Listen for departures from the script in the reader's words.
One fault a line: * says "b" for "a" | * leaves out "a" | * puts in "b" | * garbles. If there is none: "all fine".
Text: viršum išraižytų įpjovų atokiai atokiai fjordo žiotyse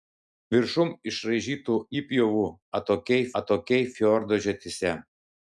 all fine